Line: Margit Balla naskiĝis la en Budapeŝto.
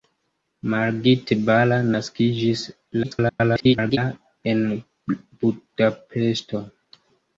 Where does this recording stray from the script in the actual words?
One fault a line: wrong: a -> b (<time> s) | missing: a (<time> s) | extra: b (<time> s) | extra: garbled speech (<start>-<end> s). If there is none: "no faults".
extra: garbled speech (3.0-4.0 s)